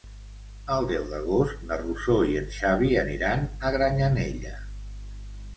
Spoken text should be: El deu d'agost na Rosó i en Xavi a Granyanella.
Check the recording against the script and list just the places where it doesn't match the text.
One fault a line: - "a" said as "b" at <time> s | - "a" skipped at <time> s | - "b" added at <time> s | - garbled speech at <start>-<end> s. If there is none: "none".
- "aniran" added at 3.0 s